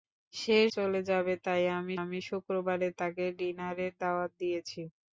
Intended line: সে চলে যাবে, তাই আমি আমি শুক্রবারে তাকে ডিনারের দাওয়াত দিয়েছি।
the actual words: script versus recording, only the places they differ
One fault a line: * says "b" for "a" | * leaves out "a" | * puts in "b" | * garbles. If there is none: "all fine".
all fine